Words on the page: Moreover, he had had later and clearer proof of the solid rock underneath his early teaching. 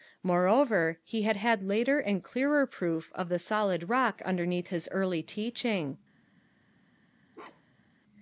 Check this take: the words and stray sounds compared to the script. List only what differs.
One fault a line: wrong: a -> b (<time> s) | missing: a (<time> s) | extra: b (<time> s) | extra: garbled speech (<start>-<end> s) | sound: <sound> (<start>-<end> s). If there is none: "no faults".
sound: bark (7.3-7.9 s)